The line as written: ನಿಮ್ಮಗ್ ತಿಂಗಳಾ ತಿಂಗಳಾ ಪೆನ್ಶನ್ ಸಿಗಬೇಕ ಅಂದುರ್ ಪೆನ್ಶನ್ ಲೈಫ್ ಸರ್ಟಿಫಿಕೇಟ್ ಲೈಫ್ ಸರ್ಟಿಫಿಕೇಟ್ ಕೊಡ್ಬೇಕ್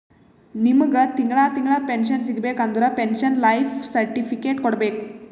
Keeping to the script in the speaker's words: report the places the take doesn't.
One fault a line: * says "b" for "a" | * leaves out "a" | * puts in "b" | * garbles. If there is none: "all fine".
* leaves out "ಲೈಫ್ ಸರ್ಟಿಫಿಕೇಟ್"